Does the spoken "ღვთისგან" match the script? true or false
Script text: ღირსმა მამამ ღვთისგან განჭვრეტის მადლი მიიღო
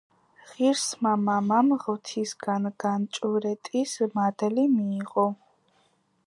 true